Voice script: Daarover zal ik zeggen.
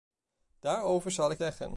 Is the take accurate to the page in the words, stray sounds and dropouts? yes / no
yes